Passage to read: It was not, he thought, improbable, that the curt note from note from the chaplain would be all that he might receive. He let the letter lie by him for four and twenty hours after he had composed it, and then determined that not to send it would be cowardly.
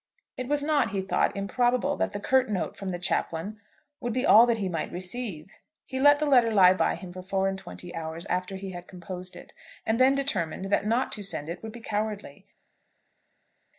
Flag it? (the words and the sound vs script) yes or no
yes